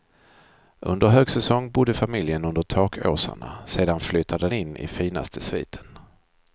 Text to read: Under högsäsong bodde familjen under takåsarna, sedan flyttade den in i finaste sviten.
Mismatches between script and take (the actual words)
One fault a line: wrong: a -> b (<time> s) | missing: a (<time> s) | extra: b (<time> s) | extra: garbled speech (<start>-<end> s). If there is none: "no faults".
missing: den (4.5 s)